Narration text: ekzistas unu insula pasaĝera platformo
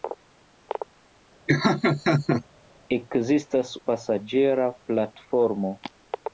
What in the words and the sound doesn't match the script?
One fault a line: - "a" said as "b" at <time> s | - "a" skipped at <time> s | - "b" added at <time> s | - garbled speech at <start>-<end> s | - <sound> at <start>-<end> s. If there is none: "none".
- laugh at 1.5-2.4 s
- "unu insula" skipped at 3.7 s